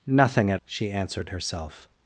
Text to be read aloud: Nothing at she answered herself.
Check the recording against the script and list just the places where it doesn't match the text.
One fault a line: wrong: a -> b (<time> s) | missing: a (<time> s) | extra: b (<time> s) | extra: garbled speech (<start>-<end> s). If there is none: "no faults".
no faults